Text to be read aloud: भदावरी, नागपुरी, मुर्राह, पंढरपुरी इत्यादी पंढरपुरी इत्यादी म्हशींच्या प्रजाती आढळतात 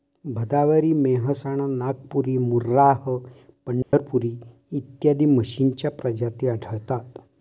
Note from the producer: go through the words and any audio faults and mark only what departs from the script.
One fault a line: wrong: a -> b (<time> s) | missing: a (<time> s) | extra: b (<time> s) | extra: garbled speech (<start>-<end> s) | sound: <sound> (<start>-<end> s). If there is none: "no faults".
extra: मेहसाणा (0.9 s)
sound: dropout (3.8-3.9 s)
missing: पंढरपुरी इत्यादी (5.2 s)